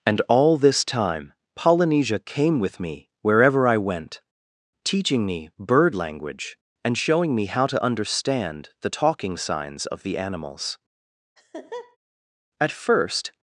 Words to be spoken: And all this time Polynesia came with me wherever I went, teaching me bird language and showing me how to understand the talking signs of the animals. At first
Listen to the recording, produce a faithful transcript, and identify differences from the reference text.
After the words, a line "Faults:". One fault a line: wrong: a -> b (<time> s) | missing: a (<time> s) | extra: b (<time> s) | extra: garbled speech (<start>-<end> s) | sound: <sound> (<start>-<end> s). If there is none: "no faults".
And all this time Polynesia came with me wherever I went, teaching me bird language and showing me how to understand the talking signs of the animals. At first
Faults:
sound: laugh (11.4-12.0 s)